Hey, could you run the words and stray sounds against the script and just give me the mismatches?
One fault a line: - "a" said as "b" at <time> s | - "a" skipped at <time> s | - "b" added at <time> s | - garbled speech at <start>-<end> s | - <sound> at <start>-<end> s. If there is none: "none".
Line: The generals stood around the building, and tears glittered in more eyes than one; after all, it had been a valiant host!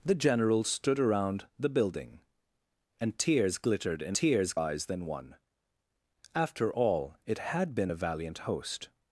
- "more" said as "tears" at 4.1 s